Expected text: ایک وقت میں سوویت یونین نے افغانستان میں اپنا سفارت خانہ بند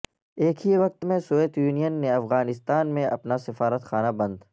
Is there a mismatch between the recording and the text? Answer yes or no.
yes